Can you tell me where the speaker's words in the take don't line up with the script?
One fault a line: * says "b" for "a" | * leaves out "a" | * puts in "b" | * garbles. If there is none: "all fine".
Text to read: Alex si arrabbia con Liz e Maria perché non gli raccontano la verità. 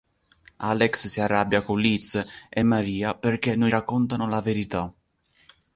* leaves out "gli"